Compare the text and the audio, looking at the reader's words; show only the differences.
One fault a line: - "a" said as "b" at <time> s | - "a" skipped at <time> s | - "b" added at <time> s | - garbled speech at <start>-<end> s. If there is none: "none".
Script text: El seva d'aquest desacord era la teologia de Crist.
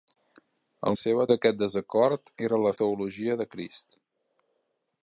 none